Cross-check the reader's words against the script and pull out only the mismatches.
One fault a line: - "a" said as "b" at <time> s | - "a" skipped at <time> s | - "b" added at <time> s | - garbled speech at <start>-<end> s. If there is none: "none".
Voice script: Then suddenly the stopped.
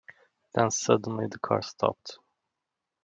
- "car" added at 1.4 s